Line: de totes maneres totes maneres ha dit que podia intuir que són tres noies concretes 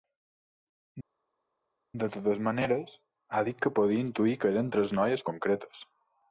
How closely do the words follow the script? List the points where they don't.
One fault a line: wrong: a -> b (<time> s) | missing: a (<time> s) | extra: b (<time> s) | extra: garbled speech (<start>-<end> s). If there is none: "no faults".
missing: totes maneres (2.9 s)
wrong: són -> eren (4.5 s)